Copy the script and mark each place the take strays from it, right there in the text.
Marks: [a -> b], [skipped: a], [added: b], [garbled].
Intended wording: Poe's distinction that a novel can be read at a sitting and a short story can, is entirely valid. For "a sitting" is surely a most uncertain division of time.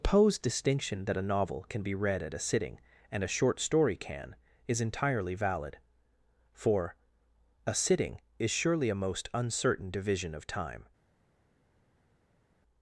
Poe's distinction that a novel can be read at a sitting and a short story can, is entirely valid. For "a sitting" is surely a most uncertain division of time.